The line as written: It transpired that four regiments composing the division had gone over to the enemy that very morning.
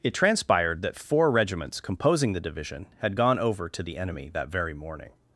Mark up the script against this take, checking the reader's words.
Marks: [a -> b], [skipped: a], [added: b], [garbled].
It transpired that four regiments composing the division had gone over to the enemy that very morning.